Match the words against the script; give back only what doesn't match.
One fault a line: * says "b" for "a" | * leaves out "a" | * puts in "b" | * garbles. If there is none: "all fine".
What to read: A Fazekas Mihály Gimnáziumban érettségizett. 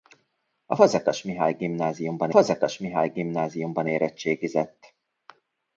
* puts in "Fazekas Mihály Gimnáziumban"